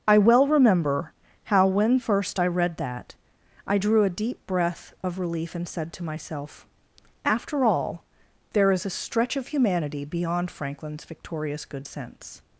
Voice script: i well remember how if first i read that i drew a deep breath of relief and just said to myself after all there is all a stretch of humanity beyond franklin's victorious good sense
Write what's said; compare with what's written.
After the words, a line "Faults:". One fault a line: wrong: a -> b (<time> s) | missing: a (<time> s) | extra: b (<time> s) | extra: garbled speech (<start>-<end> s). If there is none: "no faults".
i well remember how when first i read that i drew a deep breath of relief and said to myself after all there is a stretch of humanity beyond franklin's victorious good sense
Faults:
wrong: if -> when (1.7 s)
missing: just (5.7 s)
missing: all (8.9 s)